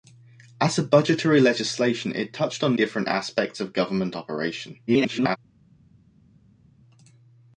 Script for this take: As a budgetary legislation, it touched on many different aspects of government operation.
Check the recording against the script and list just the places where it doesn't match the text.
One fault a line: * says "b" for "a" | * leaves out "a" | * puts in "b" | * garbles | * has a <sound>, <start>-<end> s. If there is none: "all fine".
* leaves out "many"
* garbles